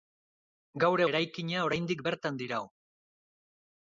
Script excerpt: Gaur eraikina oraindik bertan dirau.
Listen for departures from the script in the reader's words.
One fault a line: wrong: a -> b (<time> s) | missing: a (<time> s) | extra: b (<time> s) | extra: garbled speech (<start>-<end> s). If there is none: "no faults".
no faults